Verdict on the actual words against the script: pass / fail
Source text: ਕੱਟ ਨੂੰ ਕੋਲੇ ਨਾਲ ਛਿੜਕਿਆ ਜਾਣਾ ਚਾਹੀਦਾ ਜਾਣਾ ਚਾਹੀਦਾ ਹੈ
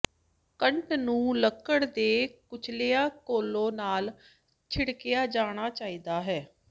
fail